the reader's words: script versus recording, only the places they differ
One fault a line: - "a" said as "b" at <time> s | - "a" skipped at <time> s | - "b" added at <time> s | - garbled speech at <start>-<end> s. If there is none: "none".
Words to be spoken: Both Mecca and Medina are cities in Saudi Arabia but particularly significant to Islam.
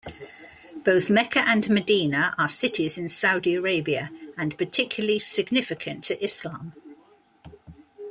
- "but" said as "and" at 4.3 s